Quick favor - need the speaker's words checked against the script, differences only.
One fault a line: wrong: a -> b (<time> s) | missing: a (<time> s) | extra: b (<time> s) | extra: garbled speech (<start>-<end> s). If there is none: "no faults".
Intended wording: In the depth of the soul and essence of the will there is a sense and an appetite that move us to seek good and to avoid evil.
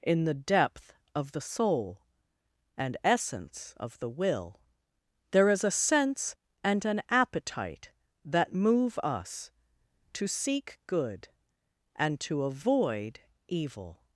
no faults